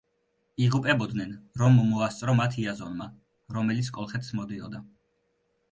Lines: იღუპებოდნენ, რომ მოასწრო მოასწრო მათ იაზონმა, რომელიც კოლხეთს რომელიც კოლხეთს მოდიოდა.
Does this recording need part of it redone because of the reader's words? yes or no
yes